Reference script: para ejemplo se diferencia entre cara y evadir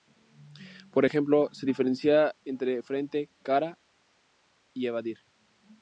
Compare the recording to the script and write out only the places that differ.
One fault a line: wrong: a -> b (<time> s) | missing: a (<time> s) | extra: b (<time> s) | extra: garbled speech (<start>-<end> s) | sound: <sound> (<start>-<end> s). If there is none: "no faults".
wrong: para -> por (0.9 s)
extra: frente (2.8 s)